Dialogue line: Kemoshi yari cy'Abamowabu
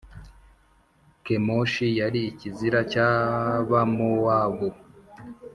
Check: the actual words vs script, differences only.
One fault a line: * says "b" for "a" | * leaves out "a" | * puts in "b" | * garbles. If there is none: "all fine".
* puts in "ikizira"